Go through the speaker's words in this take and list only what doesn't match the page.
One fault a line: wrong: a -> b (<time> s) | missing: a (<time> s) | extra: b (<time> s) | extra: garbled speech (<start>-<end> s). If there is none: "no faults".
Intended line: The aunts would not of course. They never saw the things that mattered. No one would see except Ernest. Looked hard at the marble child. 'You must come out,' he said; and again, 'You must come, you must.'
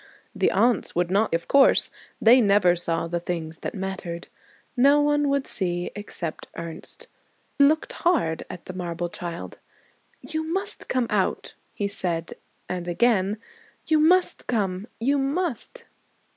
no faults